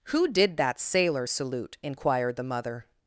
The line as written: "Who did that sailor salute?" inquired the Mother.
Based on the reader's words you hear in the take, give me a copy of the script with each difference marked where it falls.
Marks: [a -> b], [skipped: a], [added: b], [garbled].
"Who did that sailor salute?" inquired the Mother.